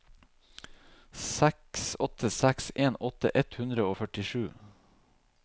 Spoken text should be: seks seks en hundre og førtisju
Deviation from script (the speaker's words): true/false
true